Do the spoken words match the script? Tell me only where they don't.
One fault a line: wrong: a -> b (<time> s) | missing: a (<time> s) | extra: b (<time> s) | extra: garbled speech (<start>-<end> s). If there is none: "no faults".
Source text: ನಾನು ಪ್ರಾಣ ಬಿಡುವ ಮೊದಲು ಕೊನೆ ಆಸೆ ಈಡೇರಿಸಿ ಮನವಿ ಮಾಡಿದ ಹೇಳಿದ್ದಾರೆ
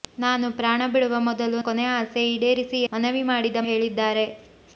no faults